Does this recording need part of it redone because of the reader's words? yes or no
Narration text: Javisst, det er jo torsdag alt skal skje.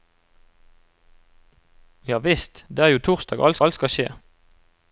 yes